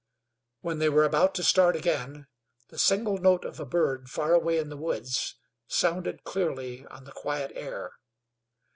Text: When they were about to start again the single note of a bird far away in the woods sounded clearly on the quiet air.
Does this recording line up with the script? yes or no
yes